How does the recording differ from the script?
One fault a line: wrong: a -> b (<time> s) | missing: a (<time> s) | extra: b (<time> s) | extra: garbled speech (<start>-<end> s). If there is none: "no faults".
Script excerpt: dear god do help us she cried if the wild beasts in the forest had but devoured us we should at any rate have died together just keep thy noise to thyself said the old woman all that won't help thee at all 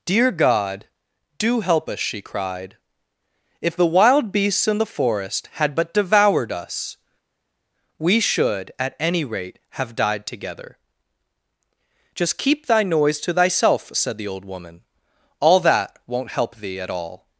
no faults